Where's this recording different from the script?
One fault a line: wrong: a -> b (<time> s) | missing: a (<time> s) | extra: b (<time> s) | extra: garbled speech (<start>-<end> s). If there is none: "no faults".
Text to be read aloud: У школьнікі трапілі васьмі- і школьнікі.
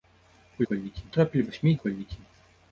no faults